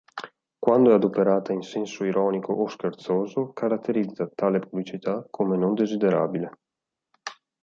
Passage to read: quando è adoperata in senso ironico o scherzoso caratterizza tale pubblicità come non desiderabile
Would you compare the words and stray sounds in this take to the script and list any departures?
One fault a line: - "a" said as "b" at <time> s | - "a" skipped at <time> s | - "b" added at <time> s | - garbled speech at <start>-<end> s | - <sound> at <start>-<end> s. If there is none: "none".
none